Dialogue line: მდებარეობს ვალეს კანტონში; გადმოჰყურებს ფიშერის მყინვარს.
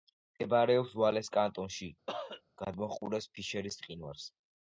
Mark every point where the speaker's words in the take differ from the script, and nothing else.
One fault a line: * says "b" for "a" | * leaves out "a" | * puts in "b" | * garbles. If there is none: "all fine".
all fine